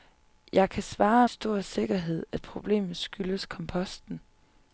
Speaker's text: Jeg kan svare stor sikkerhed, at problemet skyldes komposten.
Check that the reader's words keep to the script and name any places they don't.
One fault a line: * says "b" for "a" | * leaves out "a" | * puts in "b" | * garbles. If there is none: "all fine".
all fine